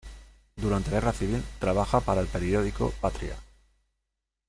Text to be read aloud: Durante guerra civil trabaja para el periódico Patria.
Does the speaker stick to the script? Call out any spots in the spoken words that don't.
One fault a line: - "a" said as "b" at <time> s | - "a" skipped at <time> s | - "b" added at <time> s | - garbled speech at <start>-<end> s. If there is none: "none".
none